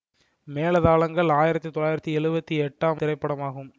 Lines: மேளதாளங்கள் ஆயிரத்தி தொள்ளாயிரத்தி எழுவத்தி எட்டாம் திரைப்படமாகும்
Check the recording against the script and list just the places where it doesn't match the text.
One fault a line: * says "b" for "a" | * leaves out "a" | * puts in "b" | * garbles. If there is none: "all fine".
all fine